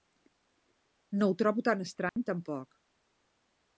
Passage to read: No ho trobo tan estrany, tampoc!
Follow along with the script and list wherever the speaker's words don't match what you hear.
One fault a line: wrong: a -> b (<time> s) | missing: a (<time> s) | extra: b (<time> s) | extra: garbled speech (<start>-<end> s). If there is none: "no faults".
no faults